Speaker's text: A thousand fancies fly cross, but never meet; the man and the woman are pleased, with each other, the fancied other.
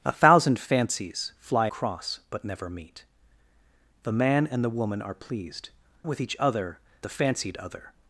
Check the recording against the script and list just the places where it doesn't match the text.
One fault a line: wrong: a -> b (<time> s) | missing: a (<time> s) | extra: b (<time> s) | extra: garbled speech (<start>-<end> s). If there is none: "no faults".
no faults